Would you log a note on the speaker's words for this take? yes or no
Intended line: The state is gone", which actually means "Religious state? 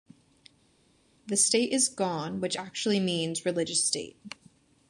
no